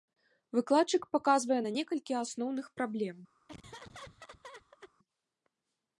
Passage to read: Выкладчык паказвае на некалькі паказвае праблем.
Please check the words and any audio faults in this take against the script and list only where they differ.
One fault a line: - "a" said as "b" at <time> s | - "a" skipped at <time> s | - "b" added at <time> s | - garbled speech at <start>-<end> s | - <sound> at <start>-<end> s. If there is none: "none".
- "паказвае" said as "асноўных" at 2.2 s
- laugh at 3.5-4.9 s